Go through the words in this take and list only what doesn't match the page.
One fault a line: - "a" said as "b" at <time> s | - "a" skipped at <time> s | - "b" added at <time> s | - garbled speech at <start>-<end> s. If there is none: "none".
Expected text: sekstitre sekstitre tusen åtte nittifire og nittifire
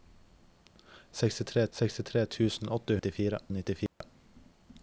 none